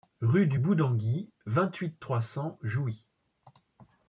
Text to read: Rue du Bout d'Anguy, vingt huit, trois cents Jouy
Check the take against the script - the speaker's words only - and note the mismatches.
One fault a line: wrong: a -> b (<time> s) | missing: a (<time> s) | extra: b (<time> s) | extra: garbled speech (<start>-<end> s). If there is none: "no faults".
no faults